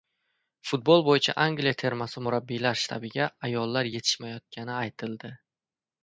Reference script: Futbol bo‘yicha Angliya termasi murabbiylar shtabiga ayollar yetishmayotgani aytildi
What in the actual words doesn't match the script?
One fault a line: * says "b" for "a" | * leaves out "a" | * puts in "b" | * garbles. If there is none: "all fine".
all fine